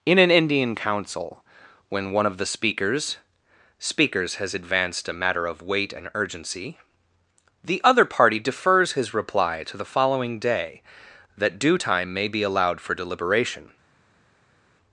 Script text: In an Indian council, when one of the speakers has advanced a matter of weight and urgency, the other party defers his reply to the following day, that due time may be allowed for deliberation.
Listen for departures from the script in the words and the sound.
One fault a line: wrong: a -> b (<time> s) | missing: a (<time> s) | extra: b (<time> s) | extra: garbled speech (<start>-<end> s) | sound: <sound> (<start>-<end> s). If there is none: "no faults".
extra: speakers (3.8 s)